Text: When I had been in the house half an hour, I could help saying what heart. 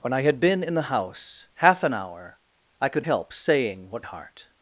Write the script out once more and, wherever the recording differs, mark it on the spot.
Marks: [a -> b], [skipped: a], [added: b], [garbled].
When I had been in the house half an hour, I could help saying what heart.